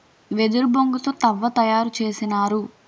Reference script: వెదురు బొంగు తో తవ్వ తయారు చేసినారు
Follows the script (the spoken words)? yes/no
yes